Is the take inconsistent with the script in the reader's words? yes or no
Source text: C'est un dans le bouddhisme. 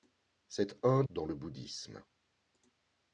no